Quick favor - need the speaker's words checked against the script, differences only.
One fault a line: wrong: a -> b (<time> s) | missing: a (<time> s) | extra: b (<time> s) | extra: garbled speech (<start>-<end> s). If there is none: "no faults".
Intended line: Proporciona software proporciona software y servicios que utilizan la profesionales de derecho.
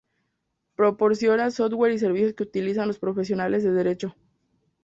missing: proporciona software (1.9 s)
wrong: la -> los (2.9 s)